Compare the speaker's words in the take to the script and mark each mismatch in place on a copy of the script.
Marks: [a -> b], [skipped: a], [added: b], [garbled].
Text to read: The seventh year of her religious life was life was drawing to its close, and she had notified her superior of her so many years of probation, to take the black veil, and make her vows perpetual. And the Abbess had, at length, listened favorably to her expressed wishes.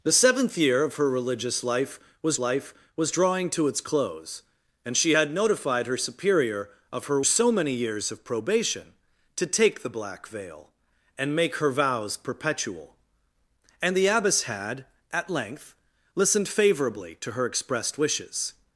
The seventh year of her religious life was life was drawing to its close, and she had notified her superior of her so many years of probation, to take the black veil, and make her vows perpetual. And the Abbess had, at length, listened favorably to her expressed wishes.